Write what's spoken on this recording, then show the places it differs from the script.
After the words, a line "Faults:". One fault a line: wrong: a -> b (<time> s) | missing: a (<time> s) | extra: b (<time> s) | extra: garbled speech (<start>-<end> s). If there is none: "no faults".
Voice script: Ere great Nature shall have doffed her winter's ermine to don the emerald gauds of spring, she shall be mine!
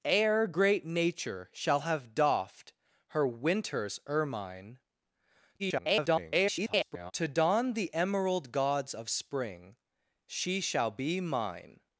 Ere great Nature shall have doffed her winter's ermine [garbled] to don the emerald gauds of spring, she shall be mine!
Faults:
extra: garbled speech (5.6-7.1 s)